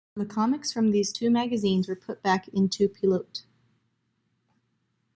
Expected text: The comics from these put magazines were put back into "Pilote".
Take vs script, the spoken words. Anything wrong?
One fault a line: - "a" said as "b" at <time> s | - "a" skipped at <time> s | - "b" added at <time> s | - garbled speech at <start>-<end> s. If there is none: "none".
- "put" said as "two" at 1.1 s